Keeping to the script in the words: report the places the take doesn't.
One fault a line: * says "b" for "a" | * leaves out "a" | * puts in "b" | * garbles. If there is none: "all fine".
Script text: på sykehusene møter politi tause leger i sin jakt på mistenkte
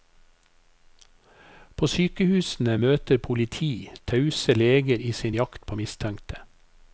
all fine